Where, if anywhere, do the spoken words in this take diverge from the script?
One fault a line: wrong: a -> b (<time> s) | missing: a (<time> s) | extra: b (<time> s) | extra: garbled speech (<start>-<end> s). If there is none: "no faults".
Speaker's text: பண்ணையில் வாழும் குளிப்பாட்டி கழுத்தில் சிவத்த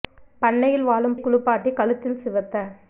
no faults